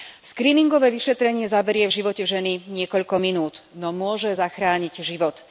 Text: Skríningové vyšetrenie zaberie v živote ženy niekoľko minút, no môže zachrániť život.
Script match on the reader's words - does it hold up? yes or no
yes